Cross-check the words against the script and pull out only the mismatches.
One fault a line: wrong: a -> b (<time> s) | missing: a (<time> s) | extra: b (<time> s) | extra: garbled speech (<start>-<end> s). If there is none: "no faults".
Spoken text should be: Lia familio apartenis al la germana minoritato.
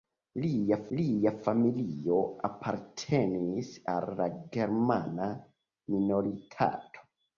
extra: lia (1.0 s)